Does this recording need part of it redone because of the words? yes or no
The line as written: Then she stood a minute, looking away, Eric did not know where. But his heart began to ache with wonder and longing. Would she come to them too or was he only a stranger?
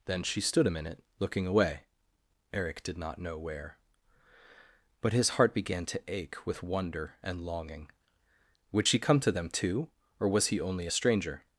no